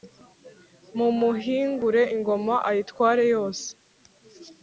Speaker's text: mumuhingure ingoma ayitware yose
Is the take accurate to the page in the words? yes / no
yes